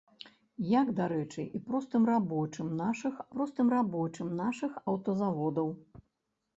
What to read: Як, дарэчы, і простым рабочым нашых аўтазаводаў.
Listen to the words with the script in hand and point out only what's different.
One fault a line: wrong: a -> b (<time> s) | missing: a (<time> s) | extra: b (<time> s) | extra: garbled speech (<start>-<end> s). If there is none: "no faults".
extra: простым рабочым нашых (3.3 s)